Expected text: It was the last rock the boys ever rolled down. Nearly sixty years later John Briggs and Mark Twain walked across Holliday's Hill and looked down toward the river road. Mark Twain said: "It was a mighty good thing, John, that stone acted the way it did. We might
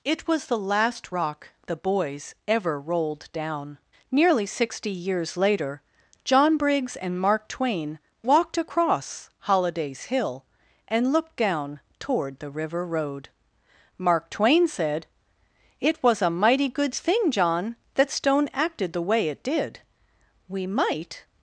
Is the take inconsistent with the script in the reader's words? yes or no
no